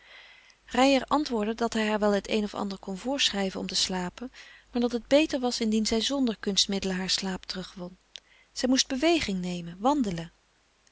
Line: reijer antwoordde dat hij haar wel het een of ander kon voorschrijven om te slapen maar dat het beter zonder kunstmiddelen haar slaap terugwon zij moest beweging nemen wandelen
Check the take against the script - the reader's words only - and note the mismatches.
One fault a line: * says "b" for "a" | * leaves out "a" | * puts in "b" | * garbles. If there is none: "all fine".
* puts in "was indien zij"